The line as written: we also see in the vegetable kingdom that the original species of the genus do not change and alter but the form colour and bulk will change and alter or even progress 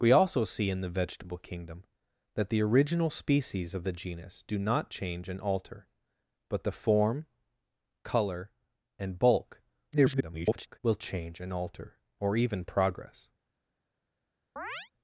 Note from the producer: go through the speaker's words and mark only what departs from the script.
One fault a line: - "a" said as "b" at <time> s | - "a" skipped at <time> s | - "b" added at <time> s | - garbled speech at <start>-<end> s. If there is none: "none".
- garbled speech at 9.9-10.8 s